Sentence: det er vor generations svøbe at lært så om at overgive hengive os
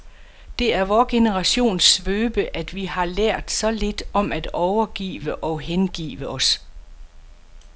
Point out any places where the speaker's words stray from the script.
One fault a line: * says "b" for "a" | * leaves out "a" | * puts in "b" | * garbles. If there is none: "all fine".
* puts in "vi har"
* puts in "lidt"
* puts in "og"